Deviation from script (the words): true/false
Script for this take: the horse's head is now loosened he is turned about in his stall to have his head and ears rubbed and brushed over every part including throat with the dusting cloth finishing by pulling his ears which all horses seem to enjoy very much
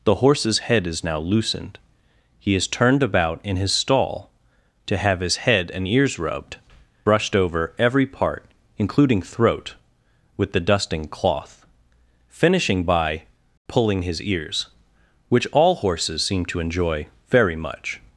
true